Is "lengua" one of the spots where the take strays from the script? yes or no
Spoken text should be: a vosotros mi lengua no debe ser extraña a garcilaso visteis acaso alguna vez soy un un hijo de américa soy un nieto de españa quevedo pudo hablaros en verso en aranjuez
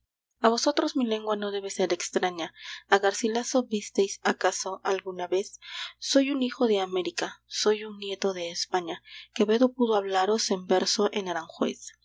no